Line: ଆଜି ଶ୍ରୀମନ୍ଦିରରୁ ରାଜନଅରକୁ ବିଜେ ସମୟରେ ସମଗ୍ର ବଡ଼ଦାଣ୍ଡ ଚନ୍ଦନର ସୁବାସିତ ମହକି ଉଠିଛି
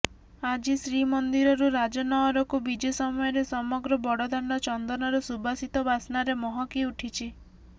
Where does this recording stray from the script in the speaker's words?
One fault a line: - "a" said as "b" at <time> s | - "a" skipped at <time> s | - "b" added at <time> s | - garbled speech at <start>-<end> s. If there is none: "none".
- "ବାସ୍ନାରେ" added at 5.9 s